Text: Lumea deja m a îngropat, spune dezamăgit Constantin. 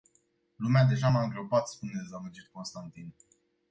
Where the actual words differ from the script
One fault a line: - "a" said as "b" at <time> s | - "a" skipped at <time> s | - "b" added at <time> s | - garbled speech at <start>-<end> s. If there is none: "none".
none